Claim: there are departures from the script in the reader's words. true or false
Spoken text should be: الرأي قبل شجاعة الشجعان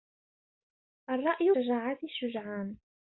true